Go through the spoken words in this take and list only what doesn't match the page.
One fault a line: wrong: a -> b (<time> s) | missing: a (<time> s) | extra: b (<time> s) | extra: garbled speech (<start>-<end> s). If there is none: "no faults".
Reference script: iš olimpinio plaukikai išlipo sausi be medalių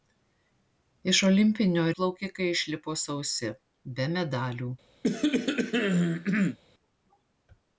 no faults